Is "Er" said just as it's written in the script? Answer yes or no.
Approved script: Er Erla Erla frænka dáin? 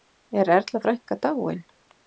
yes